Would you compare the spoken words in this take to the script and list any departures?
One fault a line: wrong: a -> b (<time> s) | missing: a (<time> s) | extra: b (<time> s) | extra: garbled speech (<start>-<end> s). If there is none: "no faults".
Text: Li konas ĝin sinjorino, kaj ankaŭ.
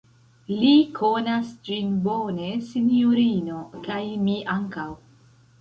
extra: bone (2.1 s)
extra: mi (4.3 s)